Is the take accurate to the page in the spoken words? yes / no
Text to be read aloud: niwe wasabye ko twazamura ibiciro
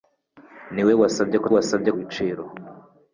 no